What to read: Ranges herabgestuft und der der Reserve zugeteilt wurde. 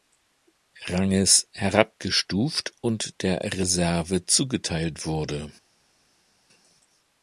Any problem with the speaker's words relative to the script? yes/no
yes